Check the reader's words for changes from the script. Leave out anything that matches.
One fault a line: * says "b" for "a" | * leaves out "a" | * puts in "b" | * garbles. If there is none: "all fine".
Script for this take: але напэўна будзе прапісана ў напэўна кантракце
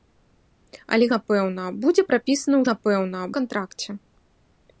all fine